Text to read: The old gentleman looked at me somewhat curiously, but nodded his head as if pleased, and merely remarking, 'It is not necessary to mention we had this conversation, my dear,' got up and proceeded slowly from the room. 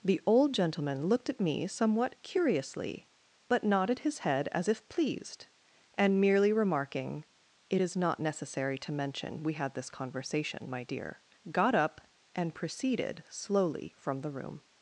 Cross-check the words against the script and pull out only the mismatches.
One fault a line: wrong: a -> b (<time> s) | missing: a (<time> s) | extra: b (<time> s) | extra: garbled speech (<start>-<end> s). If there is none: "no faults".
no faults